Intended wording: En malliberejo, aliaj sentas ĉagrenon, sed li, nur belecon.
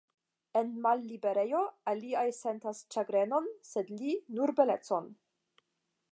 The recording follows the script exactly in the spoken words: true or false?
true